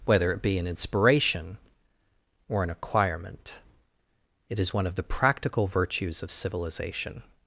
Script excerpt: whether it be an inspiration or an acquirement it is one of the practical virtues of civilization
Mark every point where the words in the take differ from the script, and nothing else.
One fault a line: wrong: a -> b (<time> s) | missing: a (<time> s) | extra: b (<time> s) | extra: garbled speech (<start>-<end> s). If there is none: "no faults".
no faults